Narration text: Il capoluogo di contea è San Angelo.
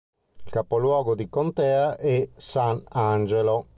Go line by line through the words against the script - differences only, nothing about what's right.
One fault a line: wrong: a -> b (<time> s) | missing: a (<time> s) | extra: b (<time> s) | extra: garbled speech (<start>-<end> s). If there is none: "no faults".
no faults